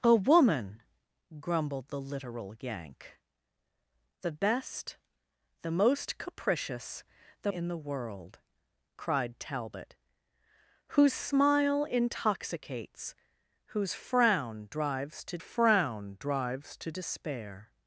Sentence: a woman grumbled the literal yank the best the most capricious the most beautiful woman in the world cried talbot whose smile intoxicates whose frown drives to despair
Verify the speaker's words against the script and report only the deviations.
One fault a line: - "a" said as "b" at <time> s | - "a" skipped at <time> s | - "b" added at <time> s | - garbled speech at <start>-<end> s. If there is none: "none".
- "most beautiful woman" skipped at 7.5 s
- "frown drives to" added at 15.4 s